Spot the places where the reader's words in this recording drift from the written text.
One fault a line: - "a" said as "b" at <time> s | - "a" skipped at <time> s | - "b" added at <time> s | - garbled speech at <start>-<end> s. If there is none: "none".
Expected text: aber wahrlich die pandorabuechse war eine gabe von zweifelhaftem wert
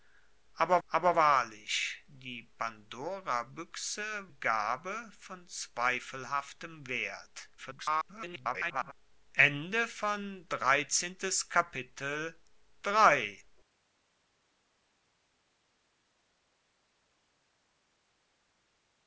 - "aber" added at 0.9 s
- "war eine" skipped at 4.0 s
- garbled speech at 7.6-8.9 s